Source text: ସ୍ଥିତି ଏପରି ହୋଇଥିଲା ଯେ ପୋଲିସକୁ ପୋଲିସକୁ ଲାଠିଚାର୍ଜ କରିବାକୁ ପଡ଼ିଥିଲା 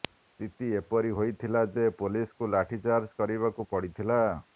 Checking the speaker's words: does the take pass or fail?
fail